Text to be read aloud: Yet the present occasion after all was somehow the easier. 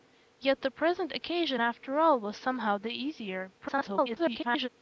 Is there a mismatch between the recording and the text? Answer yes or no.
yes